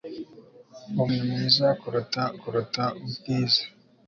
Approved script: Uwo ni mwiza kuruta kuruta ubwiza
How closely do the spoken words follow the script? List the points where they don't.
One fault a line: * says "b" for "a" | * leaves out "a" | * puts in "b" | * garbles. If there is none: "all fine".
all fine